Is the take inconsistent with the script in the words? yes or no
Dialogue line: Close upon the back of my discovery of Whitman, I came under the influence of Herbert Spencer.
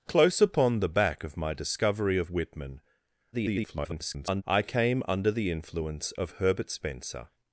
yes